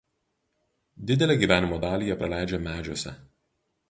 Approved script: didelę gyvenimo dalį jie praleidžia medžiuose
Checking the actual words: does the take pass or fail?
pass